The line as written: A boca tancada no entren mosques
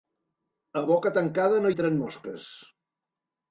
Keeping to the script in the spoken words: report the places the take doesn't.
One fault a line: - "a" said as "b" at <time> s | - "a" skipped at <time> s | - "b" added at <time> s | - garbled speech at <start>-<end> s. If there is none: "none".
none